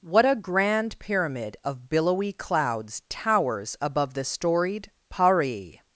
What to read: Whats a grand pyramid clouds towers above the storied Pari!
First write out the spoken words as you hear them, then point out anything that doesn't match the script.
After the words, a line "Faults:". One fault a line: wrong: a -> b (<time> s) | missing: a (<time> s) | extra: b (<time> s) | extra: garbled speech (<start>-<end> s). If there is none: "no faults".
What a grand pyramid of billowy clouds towers above the storied Pari!
Faults:
wrong: Whats -> What (0.0 s)
extra: of billowy (1.6 s)